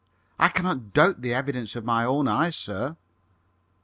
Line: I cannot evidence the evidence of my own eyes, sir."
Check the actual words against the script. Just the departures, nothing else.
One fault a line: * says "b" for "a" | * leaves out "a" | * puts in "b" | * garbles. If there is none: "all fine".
* says "doubt" for "evidence"